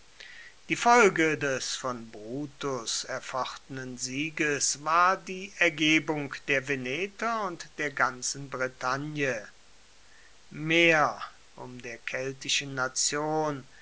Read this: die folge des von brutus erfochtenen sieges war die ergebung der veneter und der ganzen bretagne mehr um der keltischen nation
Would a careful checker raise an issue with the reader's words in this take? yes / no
no